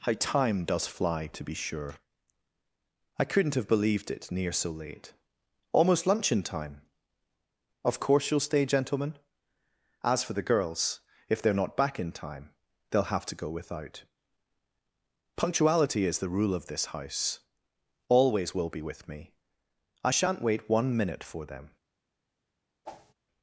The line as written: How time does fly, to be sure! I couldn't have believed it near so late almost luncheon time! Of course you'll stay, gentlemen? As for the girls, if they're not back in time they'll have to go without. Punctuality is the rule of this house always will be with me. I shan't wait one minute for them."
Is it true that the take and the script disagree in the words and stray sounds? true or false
true